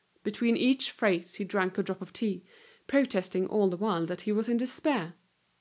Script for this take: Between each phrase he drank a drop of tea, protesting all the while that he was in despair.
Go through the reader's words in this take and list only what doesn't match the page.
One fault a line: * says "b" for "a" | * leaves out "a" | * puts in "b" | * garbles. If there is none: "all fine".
all fine